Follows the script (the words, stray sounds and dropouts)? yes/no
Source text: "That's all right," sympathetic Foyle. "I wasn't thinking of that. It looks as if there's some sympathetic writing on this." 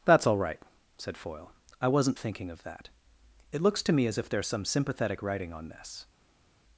no